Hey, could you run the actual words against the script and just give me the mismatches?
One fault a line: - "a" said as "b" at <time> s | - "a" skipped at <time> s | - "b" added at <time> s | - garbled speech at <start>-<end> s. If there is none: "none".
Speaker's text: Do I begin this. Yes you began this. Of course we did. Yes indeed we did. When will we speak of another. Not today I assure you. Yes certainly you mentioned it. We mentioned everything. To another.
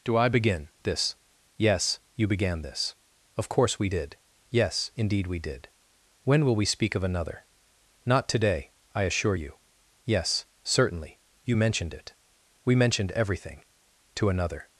none